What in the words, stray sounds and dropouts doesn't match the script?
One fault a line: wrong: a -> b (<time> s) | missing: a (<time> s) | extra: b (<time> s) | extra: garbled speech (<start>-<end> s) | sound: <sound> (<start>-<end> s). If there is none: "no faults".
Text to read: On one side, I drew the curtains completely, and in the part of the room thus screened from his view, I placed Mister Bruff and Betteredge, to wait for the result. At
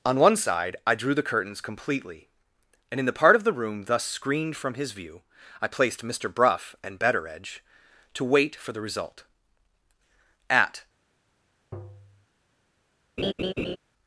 sound: tap (11.7-12.3 s)
sound: laugh (13.2-13.8 s)